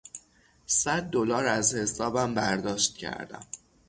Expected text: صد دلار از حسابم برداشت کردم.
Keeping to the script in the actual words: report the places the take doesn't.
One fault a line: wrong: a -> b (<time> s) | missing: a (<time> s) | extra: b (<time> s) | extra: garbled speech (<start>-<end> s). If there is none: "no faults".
no faults